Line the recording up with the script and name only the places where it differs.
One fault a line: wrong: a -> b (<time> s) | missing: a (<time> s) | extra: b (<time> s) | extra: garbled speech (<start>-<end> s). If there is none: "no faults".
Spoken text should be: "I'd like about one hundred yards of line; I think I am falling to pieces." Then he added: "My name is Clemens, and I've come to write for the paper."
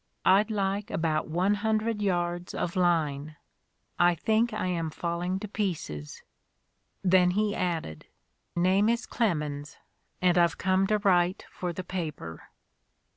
missing: My (8.1 s)